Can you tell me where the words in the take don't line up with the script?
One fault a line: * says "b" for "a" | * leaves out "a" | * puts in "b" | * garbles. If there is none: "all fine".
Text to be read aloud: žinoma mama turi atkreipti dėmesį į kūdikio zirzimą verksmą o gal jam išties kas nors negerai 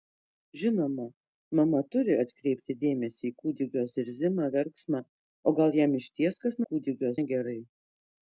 * says "kūdikio" for "nors"